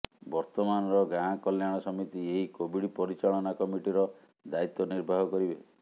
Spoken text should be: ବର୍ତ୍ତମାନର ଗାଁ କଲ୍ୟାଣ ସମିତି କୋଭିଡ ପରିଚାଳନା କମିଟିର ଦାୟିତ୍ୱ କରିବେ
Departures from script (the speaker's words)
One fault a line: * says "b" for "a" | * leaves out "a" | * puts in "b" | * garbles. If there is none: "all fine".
* puts in "ଏହି"
* puts in "ନିର୍ବାହ"